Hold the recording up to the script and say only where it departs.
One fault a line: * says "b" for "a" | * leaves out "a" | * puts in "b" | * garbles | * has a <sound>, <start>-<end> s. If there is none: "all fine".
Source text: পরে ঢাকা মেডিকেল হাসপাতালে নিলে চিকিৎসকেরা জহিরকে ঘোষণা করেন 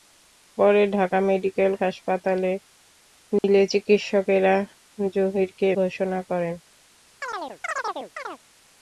* has a dropout, 3.4-3.4 s
* has a chirp, 7.2-8.4 s